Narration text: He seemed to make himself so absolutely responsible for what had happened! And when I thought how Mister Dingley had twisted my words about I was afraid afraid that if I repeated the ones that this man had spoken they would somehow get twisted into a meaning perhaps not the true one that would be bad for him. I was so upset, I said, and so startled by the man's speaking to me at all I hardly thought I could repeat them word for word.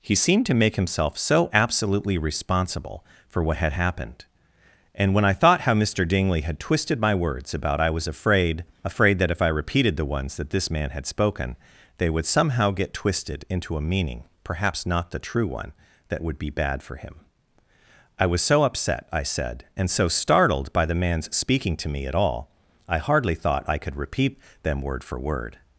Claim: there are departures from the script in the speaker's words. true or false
false